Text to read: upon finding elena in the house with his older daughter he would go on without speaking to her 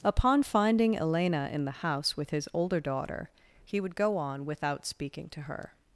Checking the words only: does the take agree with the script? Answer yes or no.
yes